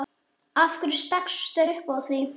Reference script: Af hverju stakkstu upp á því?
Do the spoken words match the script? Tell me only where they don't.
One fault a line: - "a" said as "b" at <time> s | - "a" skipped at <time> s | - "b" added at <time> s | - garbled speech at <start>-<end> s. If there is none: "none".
none